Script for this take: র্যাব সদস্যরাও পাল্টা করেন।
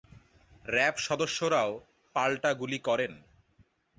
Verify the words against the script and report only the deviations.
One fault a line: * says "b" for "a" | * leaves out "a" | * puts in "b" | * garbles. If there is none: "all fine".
* puts in "গুলি"